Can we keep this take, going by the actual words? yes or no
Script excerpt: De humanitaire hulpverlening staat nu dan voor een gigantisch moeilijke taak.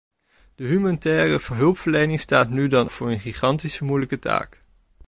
yes